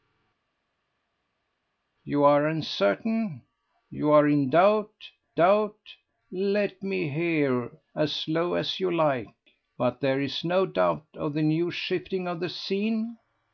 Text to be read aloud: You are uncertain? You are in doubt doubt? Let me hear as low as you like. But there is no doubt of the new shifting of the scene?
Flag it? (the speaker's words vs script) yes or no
no